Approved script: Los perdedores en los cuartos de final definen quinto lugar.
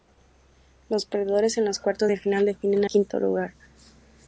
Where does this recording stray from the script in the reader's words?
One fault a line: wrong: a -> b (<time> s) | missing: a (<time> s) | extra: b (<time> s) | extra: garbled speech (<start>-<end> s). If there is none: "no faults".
no faults